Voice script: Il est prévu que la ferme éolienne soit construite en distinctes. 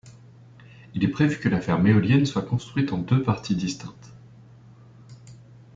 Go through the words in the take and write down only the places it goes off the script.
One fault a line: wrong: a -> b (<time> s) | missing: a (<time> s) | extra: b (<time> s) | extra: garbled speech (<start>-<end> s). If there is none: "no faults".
extra: deux parties (3.0 s)